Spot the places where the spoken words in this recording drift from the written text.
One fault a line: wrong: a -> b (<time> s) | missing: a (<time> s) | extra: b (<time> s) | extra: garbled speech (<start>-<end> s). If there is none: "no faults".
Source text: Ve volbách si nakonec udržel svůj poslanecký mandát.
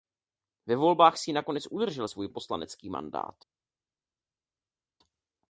no faults